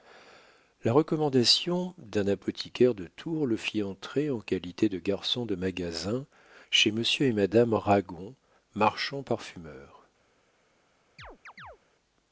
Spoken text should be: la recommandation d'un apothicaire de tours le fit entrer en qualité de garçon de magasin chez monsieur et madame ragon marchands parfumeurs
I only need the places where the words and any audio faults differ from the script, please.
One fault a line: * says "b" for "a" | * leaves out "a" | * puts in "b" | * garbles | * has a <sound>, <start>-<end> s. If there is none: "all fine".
* has a chirp, 11.2-11.8 s